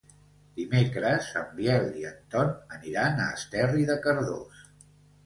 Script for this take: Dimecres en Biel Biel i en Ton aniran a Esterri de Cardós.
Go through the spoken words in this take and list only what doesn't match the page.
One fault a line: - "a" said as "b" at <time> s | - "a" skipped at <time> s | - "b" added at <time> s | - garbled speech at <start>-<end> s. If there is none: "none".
- "Biel" skipped at 1.9 s